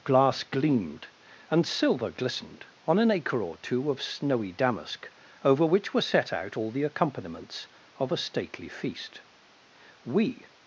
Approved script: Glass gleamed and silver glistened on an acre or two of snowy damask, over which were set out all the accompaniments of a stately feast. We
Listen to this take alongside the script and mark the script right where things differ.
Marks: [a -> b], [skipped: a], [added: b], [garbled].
Glass gleamed and silver glistened on an acre or two of snowy damask, over which were set out all the accompaniments of a stately feast. We